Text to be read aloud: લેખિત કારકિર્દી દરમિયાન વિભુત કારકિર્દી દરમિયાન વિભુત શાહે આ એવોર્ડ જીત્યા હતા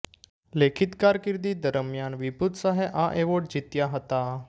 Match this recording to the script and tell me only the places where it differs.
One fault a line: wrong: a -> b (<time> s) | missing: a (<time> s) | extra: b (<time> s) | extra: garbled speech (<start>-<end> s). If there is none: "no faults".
missing: કારકિર્દી દરમિયાન વિભુત (2.6 s)